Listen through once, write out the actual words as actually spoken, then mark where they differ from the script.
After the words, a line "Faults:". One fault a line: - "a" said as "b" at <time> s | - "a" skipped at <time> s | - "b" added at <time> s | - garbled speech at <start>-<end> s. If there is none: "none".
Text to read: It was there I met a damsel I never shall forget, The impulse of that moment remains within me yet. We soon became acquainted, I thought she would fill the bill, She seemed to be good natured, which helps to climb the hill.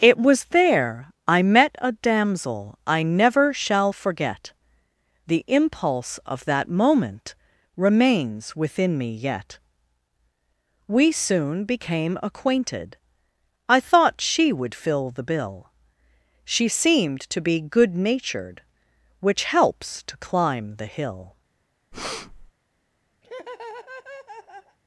It was there I met a damsel I never shall forget, The impulse of that moment remains within me yet. We soon became acquainted, I thought she would fill the bill, She seemed to be good natured, which helps to climb the hill.
Faults:
none